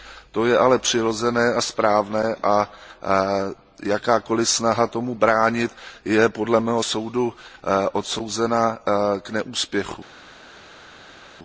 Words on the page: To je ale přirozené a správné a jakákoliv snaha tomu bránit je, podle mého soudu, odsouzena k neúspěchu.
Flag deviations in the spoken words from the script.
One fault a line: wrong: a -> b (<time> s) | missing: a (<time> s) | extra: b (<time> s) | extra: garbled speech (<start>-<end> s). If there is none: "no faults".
no faults